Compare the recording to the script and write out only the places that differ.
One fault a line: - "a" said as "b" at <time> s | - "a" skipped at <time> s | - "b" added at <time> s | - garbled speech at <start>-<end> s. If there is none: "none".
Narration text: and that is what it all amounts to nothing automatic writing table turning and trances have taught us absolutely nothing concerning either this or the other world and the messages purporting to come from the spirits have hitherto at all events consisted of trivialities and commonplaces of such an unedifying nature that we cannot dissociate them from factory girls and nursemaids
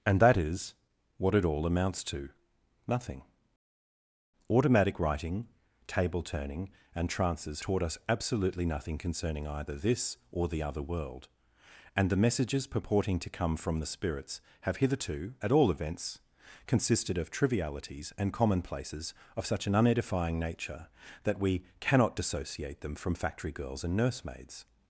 - "have" skipped at 7.6 s